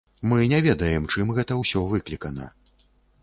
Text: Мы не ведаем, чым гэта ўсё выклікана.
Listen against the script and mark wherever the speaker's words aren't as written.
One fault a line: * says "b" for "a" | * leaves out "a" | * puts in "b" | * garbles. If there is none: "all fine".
all fine